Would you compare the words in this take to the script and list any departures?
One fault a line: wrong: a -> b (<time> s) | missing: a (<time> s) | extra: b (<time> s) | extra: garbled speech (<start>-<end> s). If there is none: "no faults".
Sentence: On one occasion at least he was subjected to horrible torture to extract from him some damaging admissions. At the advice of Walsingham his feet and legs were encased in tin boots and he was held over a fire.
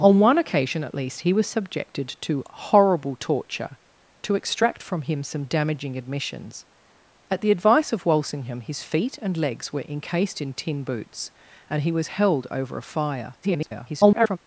extra: garbled speech (13.4-14.4 s)